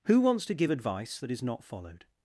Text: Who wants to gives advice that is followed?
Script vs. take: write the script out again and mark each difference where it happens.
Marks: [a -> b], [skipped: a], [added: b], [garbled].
Who wants to [gives -> give] advice that is [added: not] followed?